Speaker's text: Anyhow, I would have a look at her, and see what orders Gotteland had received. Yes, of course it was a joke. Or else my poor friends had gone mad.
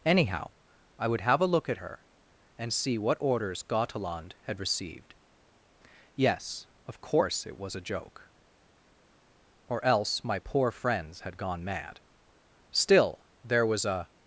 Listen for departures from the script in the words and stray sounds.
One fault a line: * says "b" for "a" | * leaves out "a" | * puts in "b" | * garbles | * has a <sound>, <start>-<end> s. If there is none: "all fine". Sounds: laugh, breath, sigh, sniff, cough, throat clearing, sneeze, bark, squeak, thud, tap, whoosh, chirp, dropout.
* puts in "Still there was a"